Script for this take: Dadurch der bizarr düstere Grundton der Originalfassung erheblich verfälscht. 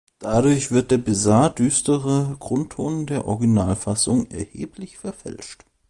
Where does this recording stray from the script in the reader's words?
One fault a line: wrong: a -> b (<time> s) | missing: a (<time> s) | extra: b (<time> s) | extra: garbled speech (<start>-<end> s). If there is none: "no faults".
extra: wird (0.7 s)